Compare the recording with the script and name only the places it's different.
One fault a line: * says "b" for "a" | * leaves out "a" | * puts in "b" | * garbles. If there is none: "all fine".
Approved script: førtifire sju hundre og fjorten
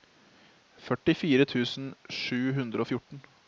* puts in "tusen"